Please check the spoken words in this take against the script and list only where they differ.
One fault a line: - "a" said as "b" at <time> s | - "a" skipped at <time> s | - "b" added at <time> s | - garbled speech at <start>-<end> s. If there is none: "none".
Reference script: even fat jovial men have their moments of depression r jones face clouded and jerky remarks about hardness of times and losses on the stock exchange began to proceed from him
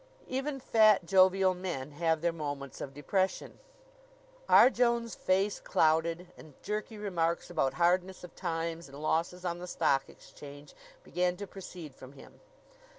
none